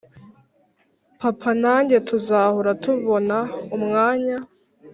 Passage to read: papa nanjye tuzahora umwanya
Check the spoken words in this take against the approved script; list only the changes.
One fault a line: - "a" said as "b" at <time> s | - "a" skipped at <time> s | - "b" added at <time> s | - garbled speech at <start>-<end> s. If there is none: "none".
- "tubona" added at 2.8 s